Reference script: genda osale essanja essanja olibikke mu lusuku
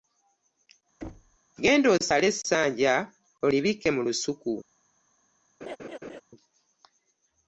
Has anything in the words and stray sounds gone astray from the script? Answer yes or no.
yes